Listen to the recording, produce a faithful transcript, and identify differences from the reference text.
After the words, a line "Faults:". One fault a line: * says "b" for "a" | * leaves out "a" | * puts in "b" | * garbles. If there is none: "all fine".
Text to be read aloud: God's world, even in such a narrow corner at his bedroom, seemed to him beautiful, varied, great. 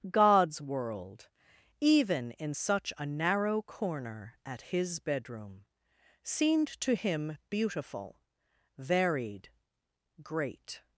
God's world, even in such a narrow corner at his bedroom, seemed to him beautiful, varied, great.
Faults:
all fine